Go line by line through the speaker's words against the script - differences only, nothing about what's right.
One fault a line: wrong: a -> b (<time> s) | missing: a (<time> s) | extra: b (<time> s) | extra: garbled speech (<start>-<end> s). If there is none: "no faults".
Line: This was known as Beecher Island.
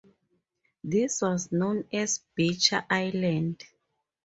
no faults